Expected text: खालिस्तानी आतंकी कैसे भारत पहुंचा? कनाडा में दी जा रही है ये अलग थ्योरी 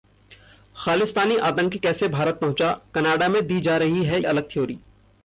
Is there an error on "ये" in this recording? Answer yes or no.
yes